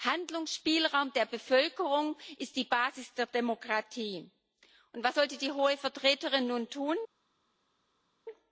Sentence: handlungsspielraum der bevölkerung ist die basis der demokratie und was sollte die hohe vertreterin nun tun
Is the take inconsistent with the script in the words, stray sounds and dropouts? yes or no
no